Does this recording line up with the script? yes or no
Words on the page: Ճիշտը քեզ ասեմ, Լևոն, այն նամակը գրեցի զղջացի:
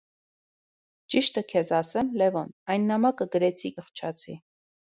yes